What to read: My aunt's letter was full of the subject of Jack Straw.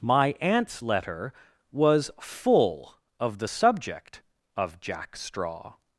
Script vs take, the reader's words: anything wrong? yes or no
no